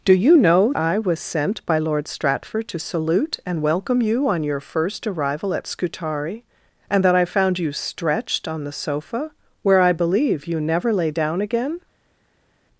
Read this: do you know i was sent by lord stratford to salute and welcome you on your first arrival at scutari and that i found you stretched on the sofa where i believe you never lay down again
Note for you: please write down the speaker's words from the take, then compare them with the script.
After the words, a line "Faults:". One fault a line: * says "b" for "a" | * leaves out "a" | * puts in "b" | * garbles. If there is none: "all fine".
do you know i was sent by lord stratford to salute and welcome you on your first arrival at scutari and that i found you stretched on the sofa where i believe you never lay down again
Faults:
all fine